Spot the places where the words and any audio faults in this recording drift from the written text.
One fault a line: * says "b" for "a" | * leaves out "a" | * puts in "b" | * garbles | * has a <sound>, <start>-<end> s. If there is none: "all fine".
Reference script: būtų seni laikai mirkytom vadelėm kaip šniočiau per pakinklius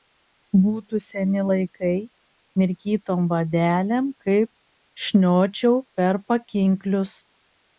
all fine